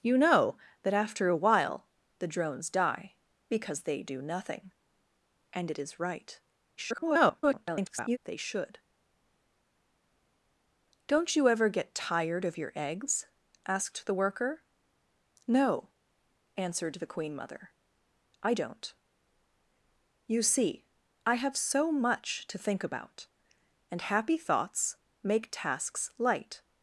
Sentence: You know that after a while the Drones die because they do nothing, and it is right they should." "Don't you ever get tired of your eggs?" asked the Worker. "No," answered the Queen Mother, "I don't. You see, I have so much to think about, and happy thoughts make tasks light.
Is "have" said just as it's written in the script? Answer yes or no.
yes